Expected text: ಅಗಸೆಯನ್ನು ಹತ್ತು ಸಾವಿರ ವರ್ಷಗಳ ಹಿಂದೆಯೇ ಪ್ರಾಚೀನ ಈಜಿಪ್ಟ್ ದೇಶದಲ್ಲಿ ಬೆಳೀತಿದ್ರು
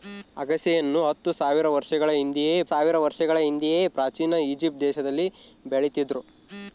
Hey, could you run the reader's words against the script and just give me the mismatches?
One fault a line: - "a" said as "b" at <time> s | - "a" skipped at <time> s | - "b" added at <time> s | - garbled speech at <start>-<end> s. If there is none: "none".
- "ಸಾವಿರ ವರ್ಷಗಳ ಹಿಂದೆಯೇ" added at 2.6 s